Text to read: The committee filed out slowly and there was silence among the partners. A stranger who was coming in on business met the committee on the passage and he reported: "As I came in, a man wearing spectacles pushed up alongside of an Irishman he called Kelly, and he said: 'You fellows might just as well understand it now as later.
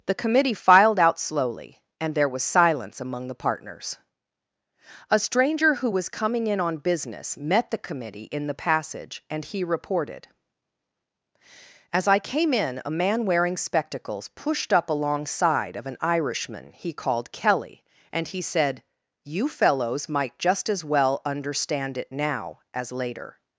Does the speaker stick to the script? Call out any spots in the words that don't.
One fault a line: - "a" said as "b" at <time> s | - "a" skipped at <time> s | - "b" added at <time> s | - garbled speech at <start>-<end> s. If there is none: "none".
- "on" said as "in" at 8.3 s